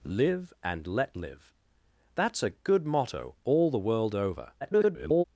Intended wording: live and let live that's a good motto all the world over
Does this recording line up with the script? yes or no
no